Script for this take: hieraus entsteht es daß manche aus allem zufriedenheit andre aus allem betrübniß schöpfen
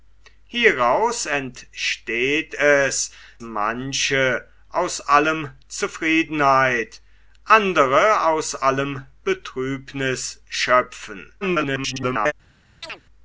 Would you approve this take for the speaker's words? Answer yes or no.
no